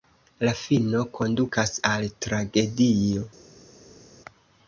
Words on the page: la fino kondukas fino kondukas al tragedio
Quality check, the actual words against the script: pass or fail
fail